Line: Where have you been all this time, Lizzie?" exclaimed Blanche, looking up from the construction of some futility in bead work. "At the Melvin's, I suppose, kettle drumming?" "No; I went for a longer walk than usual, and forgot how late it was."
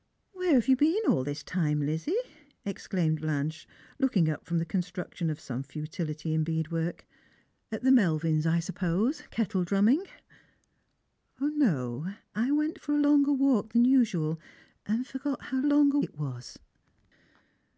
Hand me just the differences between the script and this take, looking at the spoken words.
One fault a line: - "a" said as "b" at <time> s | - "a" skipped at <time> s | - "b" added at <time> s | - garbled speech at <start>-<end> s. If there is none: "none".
- "late" said as "longer" at 15.7 s